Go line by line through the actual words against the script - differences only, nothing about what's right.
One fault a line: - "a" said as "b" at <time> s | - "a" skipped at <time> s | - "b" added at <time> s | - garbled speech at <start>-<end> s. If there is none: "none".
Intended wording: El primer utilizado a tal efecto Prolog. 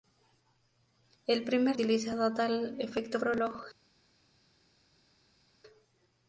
none